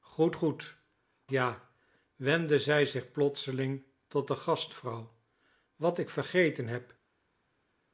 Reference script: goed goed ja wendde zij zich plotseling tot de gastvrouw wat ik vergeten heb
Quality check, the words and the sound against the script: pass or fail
pass